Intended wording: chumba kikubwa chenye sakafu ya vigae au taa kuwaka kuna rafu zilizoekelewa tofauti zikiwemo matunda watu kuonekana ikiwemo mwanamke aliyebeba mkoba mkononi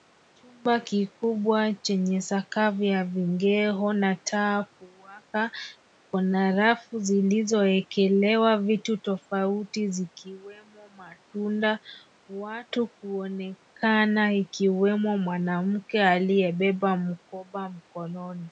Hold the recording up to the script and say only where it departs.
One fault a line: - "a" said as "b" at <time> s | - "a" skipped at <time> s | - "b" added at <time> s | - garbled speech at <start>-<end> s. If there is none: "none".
- "au" said as "na" at 3.9 s
- "vitu" added at 8.6 s